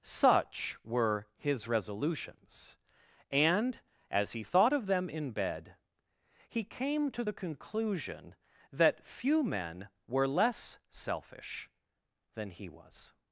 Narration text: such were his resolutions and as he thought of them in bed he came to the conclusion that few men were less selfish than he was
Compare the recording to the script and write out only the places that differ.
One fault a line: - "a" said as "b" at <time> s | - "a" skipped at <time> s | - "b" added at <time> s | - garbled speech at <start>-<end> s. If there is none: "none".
none